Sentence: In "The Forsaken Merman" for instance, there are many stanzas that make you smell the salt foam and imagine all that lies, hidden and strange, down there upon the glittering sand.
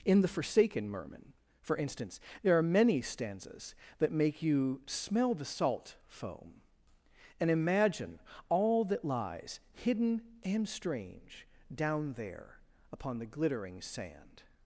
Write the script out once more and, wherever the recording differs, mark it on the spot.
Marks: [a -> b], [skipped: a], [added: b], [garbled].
In "The Forsaken Merman" for instance, there are many stanzas that make you smell the salt foam and imagine all that lies, hidden and strange, down there upon the glittering sand.